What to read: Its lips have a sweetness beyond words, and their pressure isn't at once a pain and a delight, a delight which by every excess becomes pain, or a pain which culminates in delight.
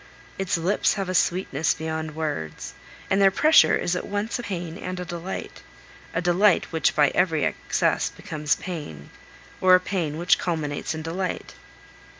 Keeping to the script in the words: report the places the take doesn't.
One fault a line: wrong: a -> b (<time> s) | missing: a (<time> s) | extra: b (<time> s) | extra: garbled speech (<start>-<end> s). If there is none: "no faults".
wrong: isn't -> is (3.7 s)